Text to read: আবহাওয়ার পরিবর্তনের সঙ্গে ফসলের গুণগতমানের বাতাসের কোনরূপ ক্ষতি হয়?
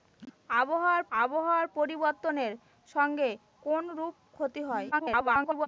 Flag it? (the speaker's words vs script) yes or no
yes